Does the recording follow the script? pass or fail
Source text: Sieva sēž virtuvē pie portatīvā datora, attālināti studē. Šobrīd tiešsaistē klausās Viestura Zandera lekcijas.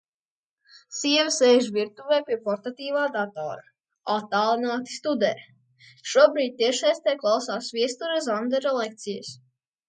pass